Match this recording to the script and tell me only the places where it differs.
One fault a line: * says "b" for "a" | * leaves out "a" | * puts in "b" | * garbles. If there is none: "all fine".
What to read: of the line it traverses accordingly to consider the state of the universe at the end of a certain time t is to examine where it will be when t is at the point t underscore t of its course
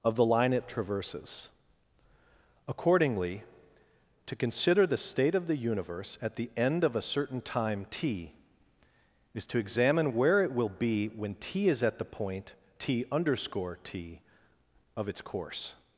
all fine